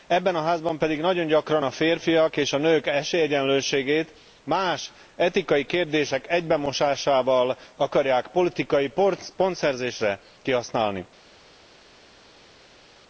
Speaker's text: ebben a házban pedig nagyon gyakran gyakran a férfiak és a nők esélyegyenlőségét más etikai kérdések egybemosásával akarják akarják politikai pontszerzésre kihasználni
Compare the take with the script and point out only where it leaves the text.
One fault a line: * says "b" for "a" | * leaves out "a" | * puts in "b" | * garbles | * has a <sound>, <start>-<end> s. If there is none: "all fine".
* leaves out "gyakran"
* leaves out "akarják"